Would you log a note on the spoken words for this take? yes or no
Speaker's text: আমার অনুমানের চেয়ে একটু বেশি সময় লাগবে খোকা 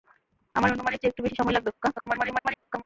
yes